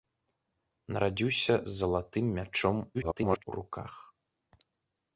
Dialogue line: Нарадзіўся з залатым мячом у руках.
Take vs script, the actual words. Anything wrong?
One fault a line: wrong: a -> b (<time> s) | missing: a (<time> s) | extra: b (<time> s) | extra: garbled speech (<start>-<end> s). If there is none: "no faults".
extra: garbled speech (2.9-3.4 s)